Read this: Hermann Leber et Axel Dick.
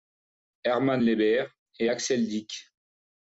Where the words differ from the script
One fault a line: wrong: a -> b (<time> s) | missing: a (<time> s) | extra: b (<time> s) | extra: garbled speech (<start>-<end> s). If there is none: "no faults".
no faults